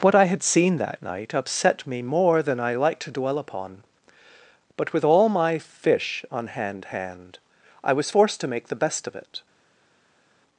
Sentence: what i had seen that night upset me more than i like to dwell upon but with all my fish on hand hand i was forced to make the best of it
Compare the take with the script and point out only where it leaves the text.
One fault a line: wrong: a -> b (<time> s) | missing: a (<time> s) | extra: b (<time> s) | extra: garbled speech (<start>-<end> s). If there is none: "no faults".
no faults